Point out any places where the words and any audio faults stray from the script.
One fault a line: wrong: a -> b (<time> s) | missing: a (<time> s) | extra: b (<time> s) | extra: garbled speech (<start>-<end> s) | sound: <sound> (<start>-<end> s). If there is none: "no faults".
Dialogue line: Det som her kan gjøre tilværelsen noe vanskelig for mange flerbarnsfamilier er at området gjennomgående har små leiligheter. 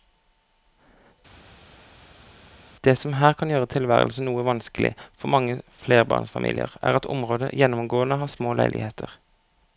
no faults